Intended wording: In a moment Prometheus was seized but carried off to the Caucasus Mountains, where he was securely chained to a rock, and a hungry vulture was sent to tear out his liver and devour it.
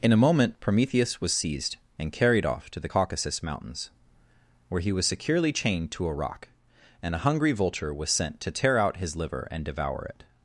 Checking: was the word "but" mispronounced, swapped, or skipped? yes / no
yes